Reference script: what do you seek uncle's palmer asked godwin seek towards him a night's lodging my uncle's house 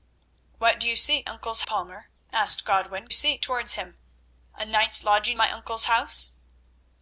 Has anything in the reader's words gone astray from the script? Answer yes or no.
no